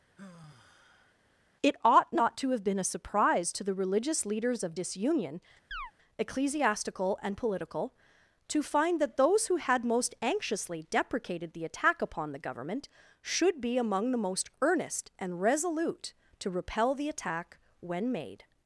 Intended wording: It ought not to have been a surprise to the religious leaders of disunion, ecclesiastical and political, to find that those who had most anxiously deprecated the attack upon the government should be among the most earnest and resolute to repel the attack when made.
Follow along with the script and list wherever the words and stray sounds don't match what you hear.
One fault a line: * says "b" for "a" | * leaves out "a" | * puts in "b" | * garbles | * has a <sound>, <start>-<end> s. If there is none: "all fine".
* has a sigh, 0.2-1.1 s
* has a chirp, 5.7-5.9 s